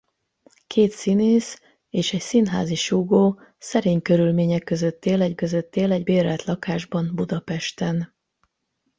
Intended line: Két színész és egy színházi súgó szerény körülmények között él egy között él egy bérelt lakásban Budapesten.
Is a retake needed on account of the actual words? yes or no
no